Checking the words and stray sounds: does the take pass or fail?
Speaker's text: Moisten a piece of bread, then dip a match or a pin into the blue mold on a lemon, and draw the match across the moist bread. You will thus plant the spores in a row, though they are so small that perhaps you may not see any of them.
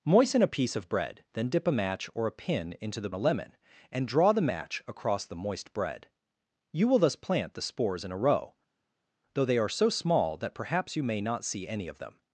fail